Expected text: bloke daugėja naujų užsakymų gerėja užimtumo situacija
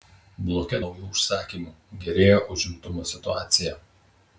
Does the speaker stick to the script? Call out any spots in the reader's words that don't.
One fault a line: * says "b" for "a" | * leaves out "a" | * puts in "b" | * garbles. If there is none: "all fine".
* leaves out "daugėja"